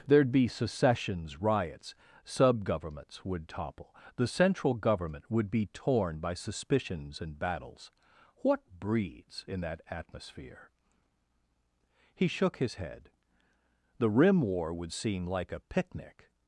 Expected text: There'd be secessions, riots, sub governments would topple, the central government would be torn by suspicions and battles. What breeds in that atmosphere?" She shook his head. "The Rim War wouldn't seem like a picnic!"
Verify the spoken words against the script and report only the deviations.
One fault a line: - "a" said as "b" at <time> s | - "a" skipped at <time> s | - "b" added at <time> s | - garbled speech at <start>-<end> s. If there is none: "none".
- "She" said as "He" at 12.1 s
- "wouldn't" said as "would" at 14.7 s